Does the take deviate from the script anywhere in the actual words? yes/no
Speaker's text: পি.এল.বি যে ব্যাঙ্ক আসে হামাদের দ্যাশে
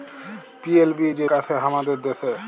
yes